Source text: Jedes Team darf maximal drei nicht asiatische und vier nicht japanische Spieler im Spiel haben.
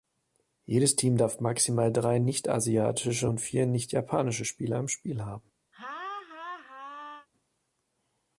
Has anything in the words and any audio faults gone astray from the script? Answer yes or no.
yes